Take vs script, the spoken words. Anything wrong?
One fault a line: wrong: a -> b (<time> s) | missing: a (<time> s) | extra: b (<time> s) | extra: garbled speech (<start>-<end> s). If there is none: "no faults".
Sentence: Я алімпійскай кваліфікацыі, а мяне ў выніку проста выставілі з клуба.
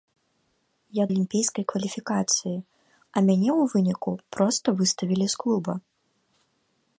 no faults